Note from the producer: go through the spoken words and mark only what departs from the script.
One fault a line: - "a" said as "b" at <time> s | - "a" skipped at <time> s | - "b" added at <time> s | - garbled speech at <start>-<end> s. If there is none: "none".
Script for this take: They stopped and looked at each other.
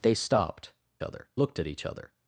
- "and" said as "other" at 1.0 s